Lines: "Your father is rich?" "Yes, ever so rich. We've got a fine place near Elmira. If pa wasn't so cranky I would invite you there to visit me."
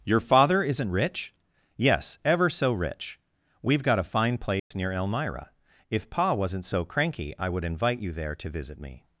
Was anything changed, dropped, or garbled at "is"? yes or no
yes